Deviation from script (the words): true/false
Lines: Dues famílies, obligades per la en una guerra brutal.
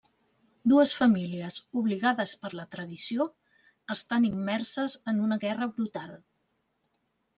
true